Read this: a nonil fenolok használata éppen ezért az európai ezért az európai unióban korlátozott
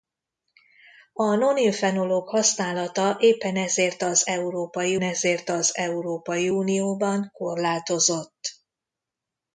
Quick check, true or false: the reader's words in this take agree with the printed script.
true